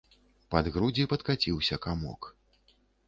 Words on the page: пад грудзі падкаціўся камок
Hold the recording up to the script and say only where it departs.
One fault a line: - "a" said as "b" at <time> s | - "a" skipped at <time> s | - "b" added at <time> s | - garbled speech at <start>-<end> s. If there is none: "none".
none